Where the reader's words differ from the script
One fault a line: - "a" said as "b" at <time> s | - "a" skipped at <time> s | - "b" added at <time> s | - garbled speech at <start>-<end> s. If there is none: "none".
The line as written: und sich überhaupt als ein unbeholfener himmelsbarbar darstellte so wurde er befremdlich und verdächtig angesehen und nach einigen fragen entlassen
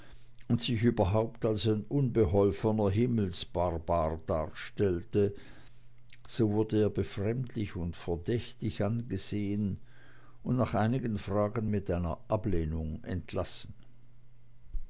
- "mit einer ablehnung" added at 11.7 s